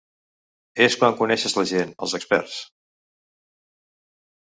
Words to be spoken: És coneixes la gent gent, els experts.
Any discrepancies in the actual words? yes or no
yes